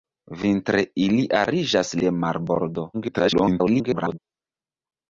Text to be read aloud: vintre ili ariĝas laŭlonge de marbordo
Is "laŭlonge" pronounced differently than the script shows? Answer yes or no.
yes